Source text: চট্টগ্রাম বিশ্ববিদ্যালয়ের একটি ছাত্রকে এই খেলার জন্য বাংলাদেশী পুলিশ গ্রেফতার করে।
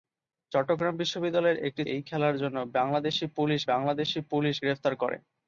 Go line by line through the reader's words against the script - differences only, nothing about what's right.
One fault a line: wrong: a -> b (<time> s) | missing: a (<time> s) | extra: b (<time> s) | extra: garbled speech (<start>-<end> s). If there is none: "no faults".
missing: ছাত্রকে (1.8 s)
extra: বাংলাদেশী পুলিশ (3.7 s)